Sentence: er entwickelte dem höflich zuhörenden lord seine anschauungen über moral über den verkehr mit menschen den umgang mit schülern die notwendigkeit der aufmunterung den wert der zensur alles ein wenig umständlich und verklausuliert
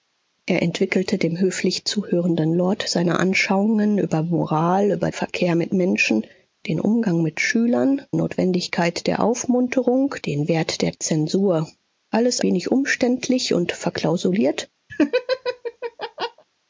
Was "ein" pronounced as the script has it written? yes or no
no